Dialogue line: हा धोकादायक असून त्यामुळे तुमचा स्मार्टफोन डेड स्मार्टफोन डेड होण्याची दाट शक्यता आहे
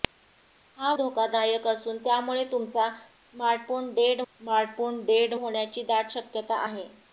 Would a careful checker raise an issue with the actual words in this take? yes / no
no